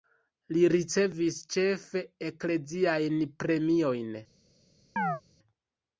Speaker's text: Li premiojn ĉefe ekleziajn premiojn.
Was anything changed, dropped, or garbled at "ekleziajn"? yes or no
no